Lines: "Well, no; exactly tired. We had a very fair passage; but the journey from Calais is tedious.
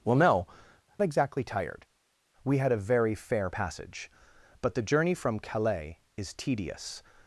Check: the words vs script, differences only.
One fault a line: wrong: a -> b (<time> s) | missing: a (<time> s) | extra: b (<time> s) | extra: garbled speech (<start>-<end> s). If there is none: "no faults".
no faults